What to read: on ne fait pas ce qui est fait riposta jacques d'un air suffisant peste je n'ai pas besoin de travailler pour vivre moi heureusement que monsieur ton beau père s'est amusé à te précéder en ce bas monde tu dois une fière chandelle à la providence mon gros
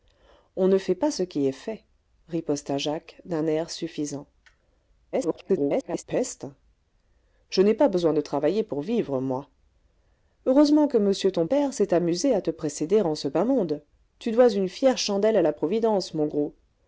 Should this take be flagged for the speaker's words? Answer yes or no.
yes